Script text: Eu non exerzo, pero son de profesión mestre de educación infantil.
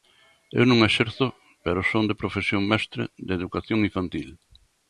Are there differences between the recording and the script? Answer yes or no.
no